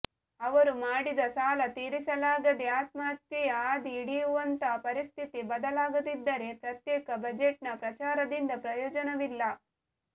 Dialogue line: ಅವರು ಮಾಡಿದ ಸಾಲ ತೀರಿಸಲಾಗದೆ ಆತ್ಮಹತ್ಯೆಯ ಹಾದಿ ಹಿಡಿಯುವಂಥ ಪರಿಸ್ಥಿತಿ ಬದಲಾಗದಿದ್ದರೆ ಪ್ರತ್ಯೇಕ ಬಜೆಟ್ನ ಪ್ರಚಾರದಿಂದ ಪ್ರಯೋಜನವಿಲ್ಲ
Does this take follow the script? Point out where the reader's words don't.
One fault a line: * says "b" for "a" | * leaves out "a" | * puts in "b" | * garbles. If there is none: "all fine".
all fine